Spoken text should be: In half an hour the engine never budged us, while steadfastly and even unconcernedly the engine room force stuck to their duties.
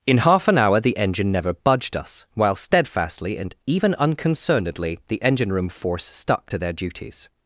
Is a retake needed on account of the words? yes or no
no